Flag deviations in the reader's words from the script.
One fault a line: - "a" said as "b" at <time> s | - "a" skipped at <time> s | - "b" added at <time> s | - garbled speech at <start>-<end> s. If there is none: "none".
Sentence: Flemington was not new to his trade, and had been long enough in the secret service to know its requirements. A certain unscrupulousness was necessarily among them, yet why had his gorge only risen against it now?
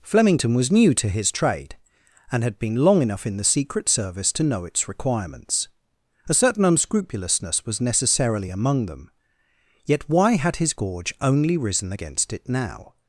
- "not" skipped at 0.7 s